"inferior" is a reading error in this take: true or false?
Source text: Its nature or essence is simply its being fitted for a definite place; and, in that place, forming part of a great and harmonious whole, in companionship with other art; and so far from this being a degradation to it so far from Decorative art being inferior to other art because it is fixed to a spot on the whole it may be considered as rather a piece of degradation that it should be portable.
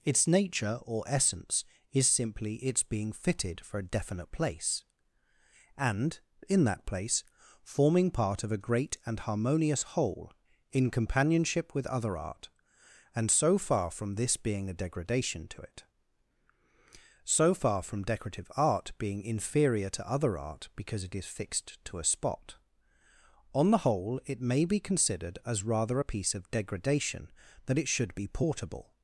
false